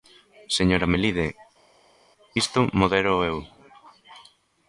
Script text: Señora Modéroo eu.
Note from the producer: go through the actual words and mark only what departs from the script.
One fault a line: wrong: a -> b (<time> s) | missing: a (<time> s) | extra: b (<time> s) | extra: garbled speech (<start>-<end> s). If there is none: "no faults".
extra: Melide isto (0.9 s)